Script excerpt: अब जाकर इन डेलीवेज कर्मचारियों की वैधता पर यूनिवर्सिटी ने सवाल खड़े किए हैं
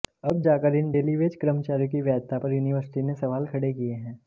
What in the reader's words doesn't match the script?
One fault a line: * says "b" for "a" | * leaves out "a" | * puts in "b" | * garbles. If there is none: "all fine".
all fine